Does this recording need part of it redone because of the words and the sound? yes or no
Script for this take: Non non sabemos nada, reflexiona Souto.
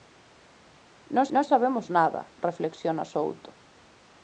no